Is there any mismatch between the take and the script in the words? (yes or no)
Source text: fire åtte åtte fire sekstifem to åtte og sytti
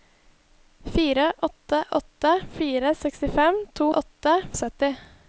no